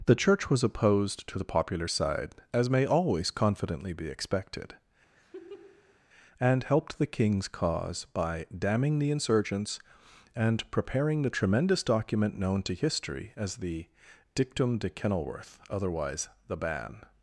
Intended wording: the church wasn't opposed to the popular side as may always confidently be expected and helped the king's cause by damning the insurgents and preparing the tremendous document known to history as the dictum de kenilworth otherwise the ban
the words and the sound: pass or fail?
fail